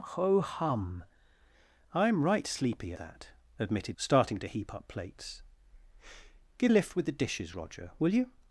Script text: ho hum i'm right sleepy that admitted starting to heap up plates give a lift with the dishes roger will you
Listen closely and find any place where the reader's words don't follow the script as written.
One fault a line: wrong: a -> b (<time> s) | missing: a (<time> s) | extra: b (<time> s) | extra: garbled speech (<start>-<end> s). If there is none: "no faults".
no faults